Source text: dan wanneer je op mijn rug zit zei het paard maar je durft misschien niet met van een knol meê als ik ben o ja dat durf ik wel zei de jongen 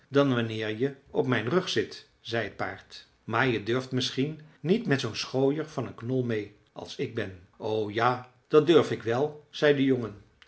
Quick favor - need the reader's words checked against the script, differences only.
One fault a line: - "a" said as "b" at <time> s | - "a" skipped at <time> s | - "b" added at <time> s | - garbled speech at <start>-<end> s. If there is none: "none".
- "zoo'n schooier" added at 5.0 s